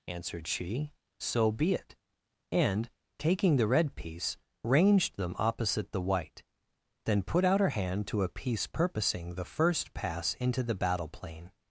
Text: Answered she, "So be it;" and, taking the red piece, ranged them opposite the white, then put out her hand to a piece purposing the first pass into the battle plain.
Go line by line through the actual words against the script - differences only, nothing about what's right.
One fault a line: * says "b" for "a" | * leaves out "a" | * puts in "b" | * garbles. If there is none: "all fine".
all fine